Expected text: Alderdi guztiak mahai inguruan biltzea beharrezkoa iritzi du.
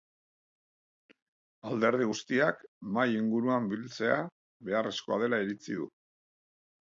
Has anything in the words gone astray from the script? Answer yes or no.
yes